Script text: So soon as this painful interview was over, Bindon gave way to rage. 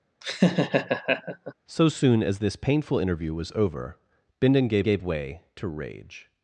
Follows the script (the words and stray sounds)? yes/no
no